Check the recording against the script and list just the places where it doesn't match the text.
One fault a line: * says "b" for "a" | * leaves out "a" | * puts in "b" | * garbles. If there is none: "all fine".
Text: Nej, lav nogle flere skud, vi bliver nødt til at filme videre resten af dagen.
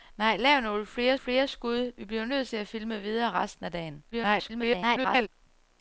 * puts in "flere"
* garbles